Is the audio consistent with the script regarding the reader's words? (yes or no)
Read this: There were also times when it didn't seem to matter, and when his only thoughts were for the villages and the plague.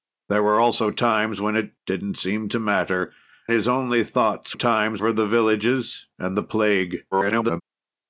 no